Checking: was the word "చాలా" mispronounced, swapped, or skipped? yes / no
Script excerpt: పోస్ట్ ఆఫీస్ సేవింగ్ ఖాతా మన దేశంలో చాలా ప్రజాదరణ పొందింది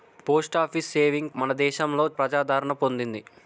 yes